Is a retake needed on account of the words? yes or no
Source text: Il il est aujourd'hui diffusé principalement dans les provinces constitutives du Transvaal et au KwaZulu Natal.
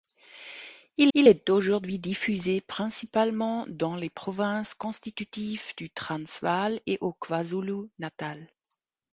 no